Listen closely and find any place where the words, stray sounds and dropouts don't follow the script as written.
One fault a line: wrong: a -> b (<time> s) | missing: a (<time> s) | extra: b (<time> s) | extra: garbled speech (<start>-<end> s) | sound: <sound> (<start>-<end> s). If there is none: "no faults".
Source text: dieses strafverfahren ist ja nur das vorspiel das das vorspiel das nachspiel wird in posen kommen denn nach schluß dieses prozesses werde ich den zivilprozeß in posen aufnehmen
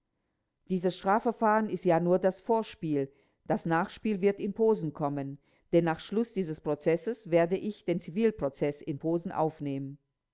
missing: das vorspiel das (3.6 s)